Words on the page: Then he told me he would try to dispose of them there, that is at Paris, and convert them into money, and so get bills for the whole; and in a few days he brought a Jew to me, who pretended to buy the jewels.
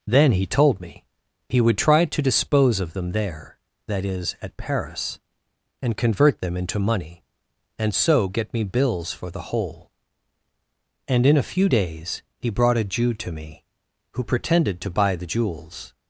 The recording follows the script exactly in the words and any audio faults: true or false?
false